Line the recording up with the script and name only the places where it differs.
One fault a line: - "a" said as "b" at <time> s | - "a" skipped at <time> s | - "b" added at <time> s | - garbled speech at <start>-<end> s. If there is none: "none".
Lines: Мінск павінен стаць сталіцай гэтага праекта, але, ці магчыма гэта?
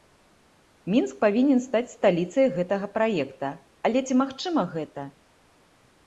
none